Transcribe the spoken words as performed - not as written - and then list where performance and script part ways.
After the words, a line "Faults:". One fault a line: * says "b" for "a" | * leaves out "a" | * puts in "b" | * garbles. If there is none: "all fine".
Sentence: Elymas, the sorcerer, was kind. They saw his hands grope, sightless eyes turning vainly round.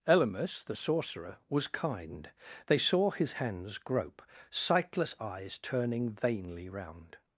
Elymas, the sorcerer, was kind. They saw his hands grope, sightless eyes turning vainly round.
Faults:
all fine